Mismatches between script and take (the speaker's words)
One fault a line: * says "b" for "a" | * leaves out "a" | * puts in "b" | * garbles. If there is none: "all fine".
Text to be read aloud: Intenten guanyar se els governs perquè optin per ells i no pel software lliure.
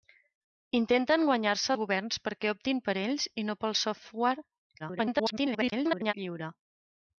* leaves out "els"
* garbles